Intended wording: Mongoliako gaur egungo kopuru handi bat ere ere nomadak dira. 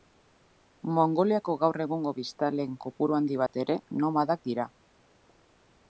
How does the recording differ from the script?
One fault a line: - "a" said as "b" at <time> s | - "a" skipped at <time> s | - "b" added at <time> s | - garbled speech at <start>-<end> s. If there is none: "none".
- "biztanleen" added at 2.2 s
- "ere" skipped at 3.8 s